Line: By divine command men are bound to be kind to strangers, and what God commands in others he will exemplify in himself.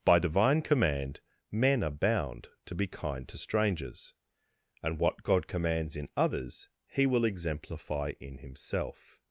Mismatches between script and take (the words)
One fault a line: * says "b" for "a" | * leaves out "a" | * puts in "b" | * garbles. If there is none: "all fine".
all fine